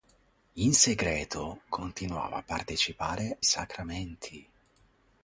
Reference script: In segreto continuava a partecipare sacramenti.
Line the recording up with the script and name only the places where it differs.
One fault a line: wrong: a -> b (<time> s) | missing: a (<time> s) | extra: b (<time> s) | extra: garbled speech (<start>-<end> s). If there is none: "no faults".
no faults